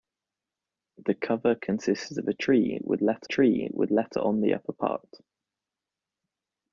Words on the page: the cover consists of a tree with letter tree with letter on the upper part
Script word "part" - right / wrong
right